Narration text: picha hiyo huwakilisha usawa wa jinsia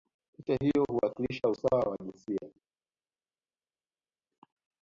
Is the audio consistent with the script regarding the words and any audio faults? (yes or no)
yes